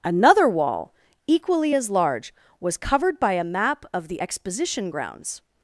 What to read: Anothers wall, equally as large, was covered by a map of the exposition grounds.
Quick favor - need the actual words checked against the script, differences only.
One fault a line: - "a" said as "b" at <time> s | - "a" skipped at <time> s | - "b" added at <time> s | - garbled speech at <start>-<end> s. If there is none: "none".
- "Anothers" said as "Another" at 0.0 s